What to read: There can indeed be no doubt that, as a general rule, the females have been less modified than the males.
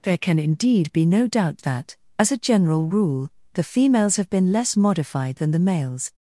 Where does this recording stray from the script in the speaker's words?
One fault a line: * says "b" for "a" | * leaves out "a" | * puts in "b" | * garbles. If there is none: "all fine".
all fine